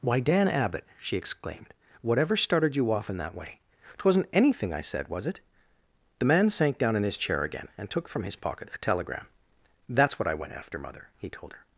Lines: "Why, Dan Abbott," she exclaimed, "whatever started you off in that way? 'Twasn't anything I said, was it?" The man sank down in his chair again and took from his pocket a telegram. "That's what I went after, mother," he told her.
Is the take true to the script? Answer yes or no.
yes